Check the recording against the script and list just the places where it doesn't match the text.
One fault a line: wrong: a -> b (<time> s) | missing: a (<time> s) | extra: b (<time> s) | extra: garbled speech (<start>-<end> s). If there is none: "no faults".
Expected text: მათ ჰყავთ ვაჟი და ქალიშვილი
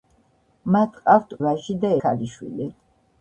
no faults